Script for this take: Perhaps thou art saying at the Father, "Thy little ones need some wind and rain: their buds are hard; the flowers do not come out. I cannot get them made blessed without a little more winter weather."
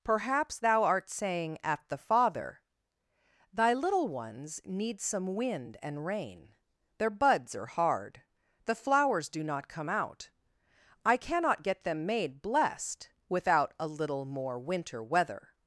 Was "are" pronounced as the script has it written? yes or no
yes